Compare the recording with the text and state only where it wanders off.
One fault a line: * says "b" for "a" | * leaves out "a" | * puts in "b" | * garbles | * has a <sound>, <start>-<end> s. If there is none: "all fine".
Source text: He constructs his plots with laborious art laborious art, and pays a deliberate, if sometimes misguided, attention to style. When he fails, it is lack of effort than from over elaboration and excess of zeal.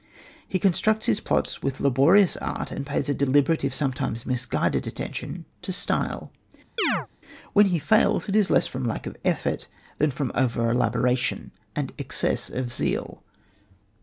* leaves out "laborious art"
* has a chirp, 6.8-7.1 s
* puts in "less from"